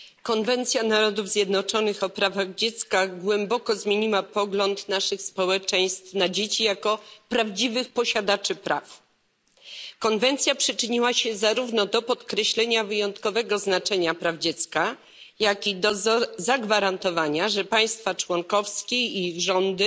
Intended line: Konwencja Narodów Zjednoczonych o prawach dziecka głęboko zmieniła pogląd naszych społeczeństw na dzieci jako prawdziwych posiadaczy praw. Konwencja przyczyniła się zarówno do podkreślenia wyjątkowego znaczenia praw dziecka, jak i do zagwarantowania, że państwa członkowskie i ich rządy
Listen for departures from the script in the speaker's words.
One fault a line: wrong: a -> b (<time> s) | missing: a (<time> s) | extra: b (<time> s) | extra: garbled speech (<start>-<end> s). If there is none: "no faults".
no faults